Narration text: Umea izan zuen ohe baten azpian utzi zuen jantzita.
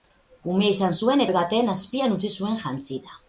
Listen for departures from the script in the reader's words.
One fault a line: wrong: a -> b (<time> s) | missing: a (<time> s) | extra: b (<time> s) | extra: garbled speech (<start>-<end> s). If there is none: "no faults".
no faults